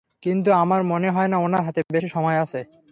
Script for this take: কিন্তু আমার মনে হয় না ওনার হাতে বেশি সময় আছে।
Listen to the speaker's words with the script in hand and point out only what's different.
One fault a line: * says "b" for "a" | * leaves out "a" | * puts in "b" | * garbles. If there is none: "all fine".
all fine